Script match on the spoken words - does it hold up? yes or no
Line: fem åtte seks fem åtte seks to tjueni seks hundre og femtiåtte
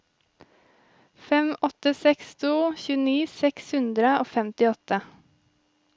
no